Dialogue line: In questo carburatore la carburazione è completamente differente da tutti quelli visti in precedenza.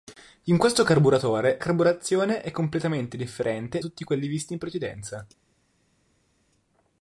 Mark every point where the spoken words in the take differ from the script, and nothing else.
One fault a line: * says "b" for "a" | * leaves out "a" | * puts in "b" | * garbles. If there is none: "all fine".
* leaves out "la"
* leaves out "da"